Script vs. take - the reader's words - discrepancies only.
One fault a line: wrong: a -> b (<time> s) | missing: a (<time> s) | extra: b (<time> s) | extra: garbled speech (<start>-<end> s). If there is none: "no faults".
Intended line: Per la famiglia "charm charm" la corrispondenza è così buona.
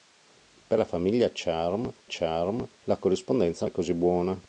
no faults